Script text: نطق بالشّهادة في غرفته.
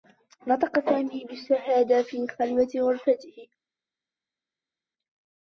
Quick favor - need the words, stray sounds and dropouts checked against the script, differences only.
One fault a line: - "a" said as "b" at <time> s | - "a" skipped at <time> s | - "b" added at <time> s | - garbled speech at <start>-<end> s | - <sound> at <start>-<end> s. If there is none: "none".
- "سامي" added at 0.9 s
- "خلوة" added at 2.3 s